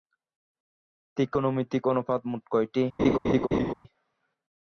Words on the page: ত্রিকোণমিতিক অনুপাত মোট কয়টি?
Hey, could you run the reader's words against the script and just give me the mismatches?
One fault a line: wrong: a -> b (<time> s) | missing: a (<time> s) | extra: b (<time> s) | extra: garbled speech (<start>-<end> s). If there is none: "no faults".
no faults